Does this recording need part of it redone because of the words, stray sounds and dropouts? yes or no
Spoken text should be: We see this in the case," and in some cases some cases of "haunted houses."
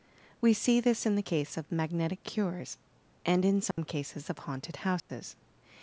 yes